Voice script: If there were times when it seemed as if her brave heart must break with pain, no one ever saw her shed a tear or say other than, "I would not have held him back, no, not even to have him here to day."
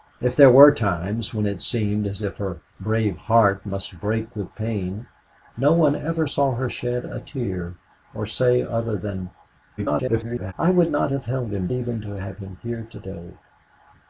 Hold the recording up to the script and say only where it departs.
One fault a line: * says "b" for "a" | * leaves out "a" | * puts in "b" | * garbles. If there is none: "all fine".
* garbles
* leaves out "back no not"